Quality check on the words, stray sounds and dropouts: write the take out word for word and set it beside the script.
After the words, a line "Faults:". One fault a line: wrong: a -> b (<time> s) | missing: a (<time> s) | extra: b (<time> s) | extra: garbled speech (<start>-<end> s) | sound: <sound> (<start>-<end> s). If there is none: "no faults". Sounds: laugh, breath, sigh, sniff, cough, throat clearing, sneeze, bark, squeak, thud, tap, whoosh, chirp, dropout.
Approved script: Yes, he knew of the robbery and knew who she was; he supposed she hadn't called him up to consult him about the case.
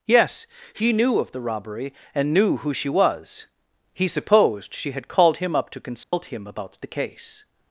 Yes, he knew of the robbery and knew who she was; he supposed she had called him up to consult him about the case.
Faults:
wrong: hadn't -> had (4.9 s)
sound: dropout (6.0-6.1 s)